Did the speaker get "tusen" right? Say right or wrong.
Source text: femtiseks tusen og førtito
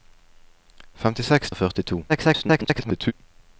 wrong